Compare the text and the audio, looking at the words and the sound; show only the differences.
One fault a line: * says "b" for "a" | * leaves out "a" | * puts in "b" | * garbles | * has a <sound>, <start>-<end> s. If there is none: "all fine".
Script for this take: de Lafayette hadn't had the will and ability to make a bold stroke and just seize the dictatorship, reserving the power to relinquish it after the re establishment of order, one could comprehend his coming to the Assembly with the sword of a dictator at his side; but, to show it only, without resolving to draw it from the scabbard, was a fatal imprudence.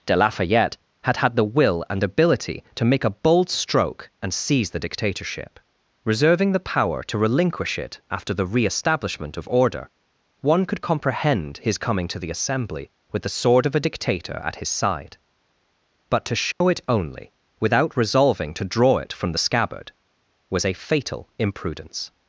* says "had" for "hadn't"
* leaves out "just"
* has a dropout, 16.5-16.6 s